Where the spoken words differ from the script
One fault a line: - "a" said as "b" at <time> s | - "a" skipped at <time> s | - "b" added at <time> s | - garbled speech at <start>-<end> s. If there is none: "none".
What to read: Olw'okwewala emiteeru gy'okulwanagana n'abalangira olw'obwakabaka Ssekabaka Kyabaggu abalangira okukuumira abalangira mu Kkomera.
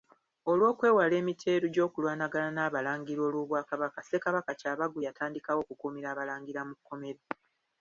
- "abalangira" said as "yatandikawo" at 5.1 s